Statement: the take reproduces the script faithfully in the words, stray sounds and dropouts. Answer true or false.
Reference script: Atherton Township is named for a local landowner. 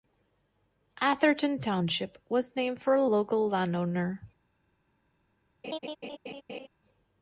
false